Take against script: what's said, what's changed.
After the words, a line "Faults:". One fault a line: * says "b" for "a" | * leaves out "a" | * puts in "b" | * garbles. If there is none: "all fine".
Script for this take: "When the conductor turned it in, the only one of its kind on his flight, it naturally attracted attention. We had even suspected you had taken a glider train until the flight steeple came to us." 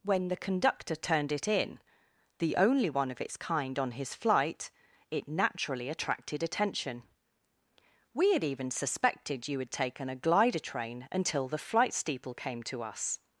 "When the conductor turned it in, the only one of its kind on his flight, it naturally attracted attention. We had even suspected you had taken a glider train until the flight steeple came to us."
Faults:
all fine